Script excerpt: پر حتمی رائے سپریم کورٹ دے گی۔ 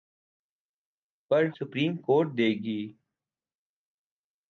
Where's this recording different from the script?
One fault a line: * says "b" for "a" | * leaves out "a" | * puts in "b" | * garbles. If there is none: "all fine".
* leaves out "حتمی رائے"